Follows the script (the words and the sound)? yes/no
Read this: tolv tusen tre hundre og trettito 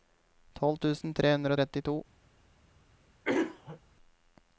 no